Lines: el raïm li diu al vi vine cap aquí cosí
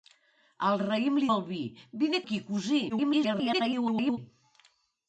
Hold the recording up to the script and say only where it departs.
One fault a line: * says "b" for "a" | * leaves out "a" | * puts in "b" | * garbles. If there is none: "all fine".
* leaves out "diu"
* leaves out "cap"
* garbles